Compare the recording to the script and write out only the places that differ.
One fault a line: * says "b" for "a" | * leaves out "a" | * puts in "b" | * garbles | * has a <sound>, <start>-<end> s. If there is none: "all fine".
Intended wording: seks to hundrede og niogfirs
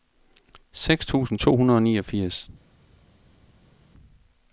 * puts in "tusind"